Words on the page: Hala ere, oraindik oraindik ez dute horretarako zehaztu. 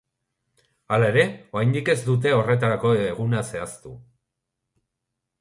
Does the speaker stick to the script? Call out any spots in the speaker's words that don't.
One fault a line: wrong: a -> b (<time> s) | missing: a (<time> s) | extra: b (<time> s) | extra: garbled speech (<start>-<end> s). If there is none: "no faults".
missing: oraindik (1.9 s)
extra: eguna (3.1 s)